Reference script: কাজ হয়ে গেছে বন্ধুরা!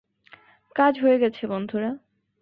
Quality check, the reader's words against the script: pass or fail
pass